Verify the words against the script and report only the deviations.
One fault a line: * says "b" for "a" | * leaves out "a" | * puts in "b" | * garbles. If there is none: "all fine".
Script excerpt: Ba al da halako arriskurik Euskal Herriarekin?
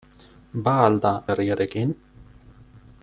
* leaves out "halako arriskurik Euskal"